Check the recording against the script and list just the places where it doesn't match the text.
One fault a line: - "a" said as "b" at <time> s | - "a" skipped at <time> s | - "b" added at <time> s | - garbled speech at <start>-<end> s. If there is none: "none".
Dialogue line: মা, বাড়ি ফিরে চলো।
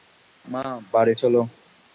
- "ফিরে" skipped at 1.1 s